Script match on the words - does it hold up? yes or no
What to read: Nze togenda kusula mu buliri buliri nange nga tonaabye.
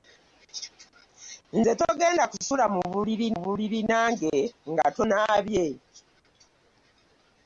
yes